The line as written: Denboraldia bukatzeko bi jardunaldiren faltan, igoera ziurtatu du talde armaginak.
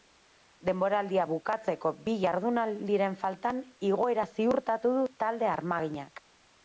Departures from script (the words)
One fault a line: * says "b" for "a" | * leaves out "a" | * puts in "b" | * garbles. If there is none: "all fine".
all fine